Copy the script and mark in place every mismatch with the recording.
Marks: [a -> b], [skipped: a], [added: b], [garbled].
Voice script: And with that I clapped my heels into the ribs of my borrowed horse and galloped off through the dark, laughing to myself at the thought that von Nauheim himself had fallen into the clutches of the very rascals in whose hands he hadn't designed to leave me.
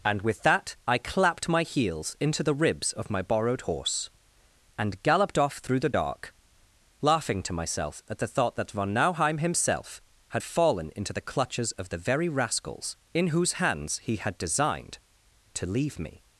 And with that I clapped my heels into the ribs of my borrowed horse and galloped off through the dark, laughing to myself at the thought that von Nauheim himself had fallen into the clutches of the very rascals in whose hands he [hadn't -> had] designed to leave me.